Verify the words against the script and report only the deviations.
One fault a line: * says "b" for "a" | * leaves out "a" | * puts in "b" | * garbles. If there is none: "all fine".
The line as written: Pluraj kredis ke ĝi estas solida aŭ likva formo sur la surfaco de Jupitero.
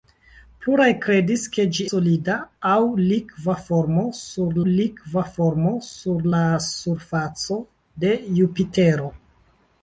* leaves out "estas"
* puts in "likva formo sur"